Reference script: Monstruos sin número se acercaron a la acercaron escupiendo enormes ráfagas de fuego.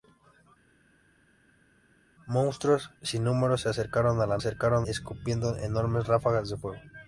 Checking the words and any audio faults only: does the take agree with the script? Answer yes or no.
yes